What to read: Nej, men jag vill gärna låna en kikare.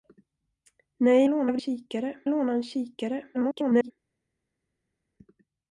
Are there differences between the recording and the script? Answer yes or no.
yes